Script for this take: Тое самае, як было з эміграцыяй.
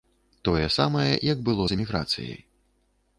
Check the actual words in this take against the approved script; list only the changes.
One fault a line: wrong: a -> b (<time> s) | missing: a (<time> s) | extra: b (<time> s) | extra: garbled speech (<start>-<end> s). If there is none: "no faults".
no faults